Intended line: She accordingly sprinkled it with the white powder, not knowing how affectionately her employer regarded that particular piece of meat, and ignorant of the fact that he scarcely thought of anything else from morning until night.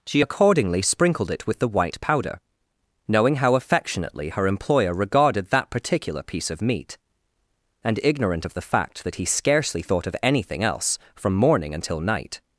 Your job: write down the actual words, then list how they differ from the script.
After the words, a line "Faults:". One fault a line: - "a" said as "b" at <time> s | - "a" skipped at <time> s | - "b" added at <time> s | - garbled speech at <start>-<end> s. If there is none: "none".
She accordingly sprinkled it with the white powder, knowing how affectionately her employer regarded that particular piece of meat, and ignorant of the fact that he scarcely thought of anything else from morning until night.
Faults:
- "not" skipped at 2.4 s